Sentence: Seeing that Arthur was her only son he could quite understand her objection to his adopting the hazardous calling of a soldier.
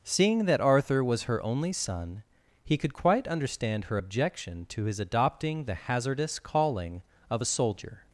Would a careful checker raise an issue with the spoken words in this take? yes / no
no